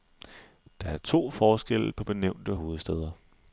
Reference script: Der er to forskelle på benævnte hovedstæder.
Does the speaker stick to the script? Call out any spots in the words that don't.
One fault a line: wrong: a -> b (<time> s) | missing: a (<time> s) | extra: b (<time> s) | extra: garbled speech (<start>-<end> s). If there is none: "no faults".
no faults